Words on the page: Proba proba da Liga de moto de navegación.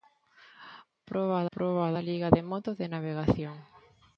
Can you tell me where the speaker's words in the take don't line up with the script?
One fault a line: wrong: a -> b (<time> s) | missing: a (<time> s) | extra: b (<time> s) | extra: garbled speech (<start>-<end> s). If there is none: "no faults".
no faults